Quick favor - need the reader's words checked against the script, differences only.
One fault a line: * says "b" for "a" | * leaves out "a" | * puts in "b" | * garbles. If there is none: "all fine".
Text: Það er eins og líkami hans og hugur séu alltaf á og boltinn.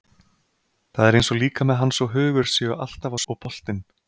all fine